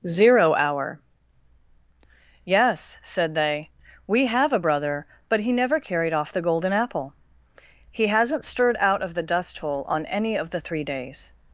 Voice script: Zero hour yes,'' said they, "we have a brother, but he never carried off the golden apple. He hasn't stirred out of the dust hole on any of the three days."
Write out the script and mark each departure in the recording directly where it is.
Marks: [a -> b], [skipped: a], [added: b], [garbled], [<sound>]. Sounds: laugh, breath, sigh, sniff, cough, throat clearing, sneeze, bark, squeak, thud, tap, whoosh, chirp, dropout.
Zero hour yes,'' said they, "we have a brother, but he never carried off the golden apple. He hasn't stirred out of the dust hole on any of the three days."